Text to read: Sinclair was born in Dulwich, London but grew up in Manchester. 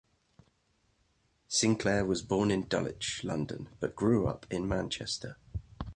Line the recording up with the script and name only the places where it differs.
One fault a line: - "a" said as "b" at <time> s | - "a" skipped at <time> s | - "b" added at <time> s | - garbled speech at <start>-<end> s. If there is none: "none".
none